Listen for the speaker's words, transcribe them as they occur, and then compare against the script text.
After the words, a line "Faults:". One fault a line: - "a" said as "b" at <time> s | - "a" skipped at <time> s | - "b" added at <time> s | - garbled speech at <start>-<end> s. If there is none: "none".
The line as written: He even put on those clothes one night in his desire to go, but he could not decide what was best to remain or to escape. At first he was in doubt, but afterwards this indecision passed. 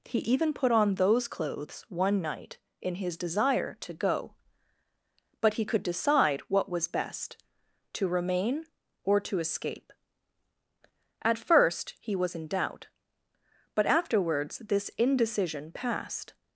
He even put on those clothes one night in his desire to go, but he could decide what was best to remain or to escape. At first he was in doubt, but afterwards this indecision passed.
Faults:
- "not" skipped at 5.8 s